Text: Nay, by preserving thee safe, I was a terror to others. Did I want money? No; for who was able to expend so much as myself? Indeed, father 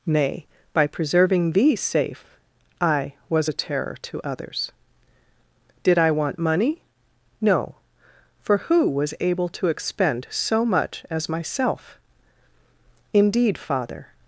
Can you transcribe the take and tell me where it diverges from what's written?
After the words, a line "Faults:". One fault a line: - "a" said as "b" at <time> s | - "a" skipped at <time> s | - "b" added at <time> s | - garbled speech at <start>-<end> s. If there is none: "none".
Nay, by preserving thee safe, I was a terror to others. Did I want money? No; for who was able to expend so much as myself? Indeed, father
Faults:
none